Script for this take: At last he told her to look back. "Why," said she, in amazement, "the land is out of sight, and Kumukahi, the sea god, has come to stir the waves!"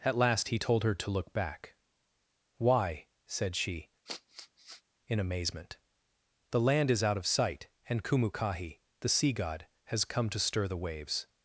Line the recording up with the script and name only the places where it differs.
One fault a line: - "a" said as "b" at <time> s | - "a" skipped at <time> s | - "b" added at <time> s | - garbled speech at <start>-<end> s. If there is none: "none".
none